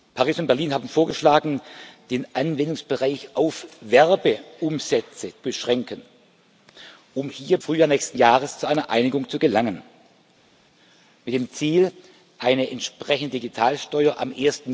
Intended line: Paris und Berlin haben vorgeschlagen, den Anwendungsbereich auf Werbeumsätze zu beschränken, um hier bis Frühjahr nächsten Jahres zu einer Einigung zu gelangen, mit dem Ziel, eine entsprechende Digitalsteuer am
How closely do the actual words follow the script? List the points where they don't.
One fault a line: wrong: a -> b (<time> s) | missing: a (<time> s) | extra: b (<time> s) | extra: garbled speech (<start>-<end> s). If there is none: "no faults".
missing: zu (5.3 s)
missing: bis (7.6 s)